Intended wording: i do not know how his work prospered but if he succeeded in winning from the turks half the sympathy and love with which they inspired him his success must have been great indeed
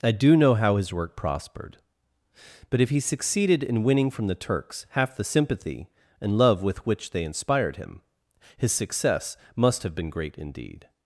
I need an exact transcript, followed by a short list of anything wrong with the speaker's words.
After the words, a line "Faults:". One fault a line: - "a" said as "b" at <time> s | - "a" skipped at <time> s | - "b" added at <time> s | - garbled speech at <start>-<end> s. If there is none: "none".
i do know how his work prospered but if he succeeded in winning from the turks half the sympathy and love with which they inspired him his success must have been great indeed
Faults:
- "not" skipped at 0.3 s